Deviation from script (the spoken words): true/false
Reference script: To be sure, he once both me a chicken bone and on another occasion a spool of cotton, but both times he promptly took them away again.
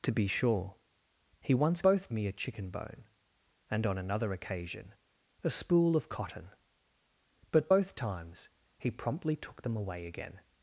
false